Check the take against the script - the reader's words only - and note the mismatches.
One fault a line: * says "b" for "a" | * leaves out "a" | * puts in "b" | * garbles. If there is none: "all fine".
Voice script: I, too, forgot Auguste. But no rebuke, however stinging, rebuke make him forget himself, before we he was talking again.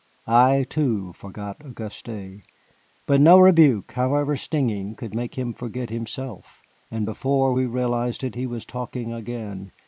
* says "could" for "rebuke"
* puts in "and"
* puts in "realized it"